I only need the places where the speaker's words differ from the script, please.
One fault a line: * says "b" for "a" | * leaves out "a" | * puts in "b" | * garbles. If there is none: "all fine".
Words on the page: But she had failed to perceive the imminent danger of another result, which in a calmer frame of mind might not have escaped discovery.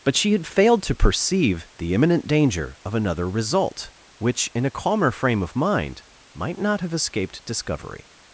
all fine